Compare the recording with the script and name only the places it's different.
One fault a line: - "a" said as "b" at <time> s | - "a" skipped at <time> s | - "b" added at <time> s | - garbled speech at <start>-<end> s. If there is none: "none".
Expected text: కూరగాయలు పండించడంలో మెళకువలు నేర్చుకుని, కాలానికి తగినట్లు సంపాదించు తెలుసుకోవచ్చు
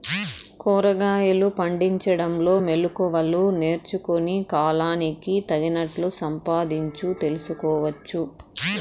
none